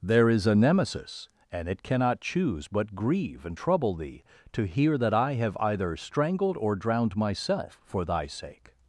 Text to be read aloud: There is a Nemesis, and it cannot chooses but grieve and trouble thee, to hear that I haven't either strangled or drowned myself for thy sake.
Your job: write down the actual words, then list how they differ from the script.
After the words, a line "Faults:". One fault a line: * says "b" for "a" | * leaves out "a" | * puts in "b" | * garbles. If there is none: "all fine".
There is a Nemesis, and it cannot choose but grieve and trouble thee, to hear that I have either strangled or drowned myself for thy sake.
Faults:
* says "choose" for "chooses"
* says "have" for "haven't"